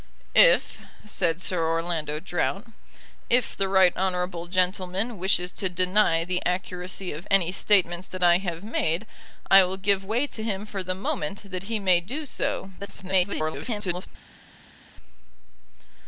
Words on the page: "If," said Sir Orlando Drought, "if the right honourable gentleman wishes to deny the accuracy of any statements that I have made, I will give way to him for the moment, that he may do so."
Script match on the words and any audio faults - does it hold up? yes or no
no